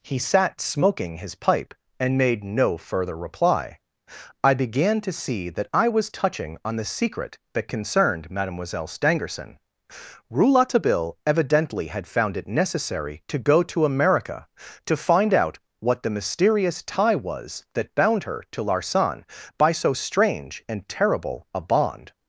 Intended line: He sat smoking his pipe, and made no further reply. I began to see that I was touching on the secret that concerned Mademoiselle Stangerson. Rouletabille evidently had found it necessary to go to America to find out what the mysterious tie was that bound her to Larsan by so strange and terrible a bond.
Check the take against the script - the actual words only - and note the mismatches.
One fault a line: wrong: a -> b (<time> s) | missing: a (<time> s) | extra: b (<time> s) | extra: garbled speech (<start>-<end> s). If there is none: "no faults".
no faults